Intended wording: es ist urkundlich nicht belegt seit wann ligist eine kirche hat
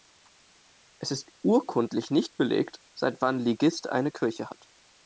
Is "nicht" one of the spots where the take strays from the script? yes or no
no